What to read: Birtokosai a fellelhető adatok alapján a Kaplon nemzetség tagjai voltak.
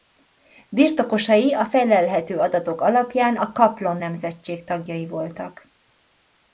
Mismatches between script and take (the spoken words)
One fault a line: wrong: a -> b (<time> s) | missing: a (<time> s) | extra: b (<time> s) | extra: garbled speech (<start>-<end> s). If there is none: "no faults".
no faults